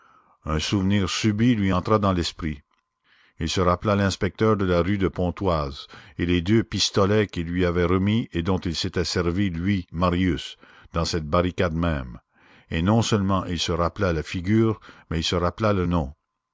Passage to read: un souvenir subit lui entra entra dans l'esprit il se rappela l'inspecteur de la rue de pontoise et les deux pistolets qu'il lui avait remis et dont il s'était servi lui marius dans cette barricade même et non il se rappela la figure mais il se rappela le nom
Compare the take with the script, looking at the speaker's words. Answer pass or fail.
fail